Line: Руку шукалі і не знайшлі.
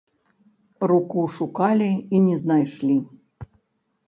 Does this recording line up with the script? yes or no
yes